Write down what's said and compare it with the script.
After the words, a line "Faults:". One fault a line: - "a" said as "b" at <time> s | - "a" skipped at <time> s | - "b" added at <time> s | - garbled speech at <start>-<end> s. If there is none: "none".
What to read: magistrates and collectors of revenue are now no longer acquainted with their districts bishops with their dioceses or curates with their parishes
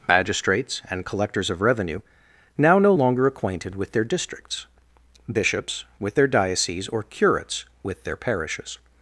magistrates and collectors of revenue now no longer acquainted with their districts bishops with their dioceses or curates with their parishes
Faults:
- "are" skipped at 2.0 s